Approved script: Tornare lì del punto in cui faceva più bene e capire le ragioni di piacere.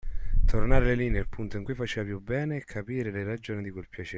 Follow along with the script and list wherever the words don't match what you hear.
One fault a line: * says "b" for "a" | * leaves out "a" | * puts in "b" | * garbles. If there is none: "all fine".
* says "nel" for "del"
* puts in "quel"